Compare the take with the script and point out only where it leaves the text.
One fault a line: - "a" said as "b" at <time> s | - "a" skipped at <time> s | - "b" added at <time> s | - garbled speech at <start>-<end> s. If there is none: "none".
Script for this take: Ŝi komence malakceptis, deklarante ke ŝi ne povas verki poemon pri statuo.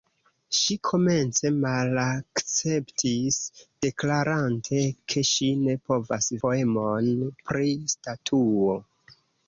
- "verki" skipped at 6.3 s